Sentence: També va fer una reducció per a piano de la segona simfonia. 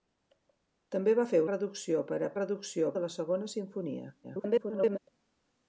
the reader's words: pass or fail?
fail